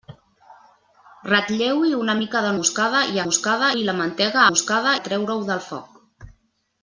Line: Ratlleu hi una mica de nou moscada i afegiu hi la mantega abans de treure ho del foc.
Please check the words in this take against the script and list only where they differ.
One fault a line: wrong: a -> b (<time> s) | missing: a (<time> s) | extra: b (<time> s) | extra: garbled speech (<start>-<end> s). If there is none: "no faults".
missing: nou (2.5 s)
wrong: afegiu -> moscada (3.3 s)
wrong: abans -> moscada (4.5 s)